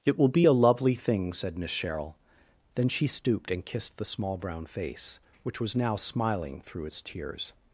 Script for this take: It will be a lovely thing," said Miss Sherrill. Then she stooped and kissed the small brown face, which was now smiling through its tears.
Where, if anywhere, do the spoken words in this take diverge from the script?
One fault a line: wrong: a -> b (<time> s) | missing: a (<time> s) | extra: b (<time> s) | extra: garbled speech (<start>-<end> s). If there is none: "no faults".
no faults